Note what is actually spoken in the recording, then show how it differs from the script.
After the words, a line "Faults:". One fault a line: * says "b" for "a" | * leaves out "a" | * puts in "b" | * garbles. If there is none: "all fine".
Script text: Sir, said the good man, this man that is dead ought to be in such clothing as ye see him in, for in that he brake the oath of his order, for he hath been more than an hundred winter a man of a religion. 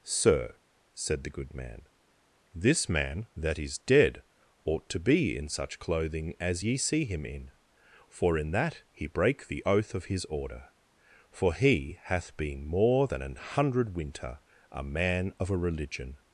Sir, said the good man, this man that is dead ought to be in such clothing as ye see him in, for in that he brake the oath of his order, for he hath been more than an hundred winter a man of a religion.
Faults:
all fine